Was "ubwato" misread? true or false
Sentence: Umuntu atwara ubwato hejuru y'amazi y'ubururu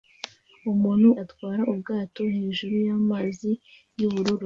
false